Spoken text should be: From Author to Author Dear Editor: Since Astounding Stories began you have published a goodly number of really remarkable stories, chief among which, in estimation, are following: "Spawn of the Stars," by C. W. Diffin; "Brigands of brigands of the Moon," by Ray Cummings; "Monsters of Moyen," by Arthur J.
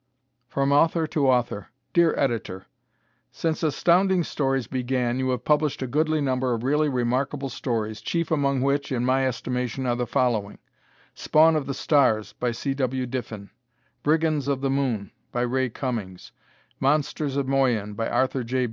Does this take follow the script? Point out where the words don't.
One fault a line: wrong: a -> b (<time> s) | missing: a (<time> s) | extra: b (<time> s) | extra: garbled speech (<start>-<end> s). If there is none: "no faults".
extra: my (9.1 s)
extra: the (9.9 s)
missing: brigands of (14.6 s)